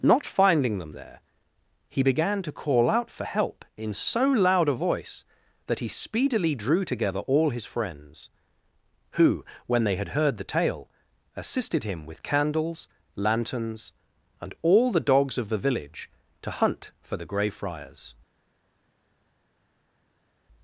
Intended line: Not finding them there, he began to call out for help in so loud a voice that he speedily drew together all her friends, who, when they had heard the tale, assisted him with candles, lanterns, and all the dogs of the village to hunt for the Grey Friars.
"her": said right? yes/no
no